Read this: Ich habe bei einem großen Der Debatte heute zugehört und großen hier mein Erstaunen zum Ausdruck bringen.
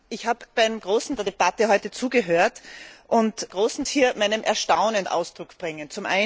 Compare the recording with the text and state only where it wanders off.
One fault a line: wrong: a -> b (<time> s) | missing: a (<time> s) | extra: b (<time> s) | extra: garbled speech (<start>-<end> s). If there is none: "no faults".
no faults